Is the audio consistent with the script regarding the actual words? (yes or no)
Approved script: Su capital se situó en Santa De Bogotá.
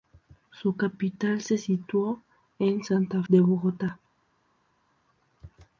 yes